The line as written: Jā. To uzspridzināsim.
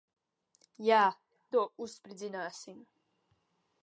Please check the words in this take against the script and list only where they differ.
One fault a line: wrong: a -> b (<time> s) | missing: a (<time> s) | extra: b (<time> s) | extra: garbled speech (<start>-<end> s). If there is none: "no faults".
no faults